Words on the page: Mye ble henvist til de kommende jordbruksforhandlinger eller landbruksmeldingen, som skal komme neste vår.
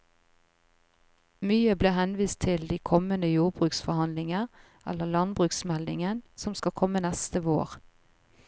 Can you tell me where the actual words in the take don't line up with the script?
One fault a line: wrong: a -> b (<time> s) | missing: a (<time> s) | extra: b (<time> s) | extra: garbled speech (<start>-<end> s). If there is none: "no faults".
no faults